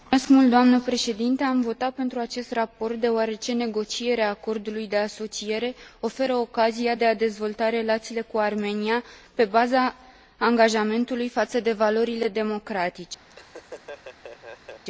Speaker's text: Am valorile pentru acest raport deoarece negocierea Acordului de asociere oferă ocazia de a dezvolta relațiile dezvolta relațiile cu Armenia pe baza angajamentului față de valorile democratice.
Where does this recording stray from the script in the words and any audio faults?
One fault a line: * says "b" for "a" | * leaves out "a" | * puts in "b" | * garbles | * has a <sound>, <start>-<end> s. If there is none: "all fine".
* says "votat" for "valorile"
* leaves out "dezvolta relațiile"
* has a laugh, 13.3-14.8 s